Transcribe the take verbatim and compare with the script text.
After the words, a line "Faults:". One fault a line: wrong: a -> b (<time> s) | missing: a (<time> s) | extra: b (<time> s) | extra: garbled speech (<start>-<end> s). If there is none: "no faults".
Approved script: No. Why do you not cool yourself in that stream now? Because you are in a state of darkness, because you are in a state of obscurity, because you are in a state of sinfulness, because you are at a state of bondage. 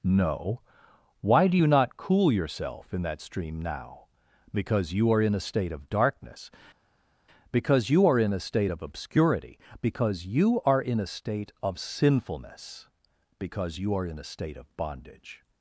No. Why do you not cool yourself in that stream now? Because you are in a state of darkness, because you are in a state of obscurity, because you are in a state of sinfulness, because you are in a state of bondage.
Faults:
wrong: at -> in (14.1 s)